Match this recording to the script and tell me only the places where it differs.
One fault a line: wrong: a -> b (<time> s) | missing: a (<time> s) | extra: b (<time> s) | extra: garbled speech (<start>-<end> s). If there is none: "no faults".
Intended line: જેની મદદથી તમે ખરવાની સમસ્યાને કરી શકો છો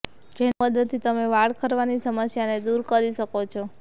extra: વાળ (1.3 s)
extra: દૂર (2.6 s)